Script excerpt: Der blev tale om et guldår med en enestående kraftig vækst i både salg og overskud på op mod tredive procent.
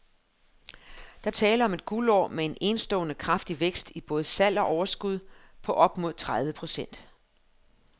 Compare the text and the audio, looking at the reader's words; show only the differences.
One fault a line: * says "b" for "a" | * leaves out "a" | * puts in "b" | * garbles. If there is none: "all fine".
* leaves out "blev"